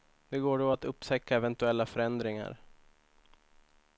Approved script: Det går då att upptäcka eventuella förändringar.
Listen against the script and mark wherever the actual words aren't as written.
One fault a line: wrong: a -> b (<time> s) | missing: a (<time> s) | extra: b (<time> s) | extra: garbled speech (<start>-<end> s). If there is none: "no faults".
no faults